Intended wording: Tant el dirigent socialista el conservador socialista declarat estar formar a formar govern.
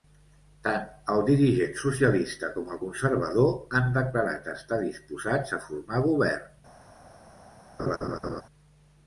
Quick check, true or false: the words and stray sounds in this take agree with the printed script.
false